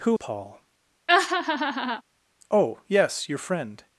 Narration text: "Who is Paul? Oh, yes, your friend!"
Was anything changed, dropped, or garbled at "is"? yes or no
yes